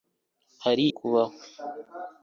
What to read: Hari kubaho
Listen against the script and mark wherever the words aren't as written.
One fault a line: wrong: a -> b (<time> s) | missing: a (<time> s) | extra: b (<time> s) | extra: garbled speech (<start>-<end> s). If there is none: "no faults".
no faults